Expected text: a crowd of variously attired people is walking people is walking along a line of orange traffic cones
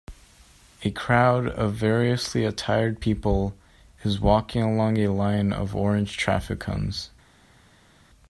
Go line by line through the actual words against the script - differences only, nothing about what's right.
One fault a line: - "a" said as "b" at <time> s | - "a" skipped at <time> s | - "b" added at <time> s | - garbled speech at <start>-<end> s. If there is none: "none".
- "people is walking" skipped at 4.6 s